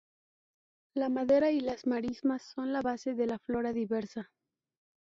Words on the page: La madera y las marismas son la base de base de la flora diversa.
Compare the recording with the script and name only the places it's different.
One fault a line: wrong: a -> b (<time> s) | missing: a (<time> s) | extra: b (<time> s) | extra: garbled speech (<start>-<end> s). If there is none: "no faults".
missing: base de (3.3 s)